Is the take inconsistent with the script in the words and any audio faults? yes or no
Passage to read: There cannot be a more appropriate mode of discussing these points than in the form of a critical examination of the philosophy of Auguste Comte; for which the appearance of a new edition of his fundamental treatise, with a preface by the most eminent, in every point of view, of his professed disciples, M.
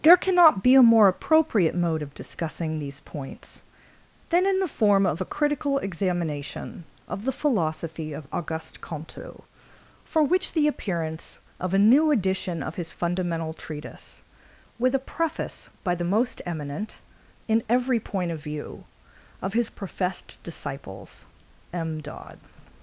yes